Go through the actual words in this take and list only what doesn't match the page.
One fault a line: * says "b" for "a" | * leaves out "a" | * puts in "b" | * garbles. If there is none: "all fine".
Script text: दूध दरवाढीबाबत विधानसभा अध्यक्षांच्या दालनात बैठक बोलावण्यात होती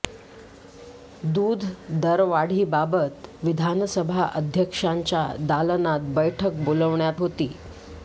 all fine